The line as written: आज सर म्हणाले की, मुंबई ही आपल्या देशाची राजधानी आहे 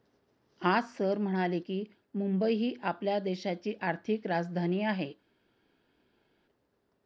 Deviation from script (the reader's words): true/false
true